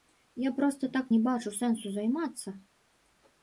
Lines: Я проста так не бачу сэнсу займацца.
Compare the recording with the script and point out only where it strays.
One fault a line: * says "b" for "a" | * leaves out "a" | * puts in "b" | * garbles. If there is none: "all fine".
all fine